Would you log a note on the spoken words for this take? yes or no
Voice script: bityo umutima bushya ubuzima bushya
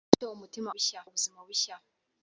no